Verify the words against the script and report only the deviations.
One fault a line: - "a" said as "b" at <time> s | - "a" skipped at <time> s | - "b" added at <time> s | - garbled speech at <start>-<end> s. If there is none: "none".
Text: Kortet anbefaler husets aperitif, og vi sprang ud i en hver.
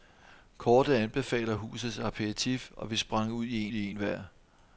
- "i" added at 3.7 s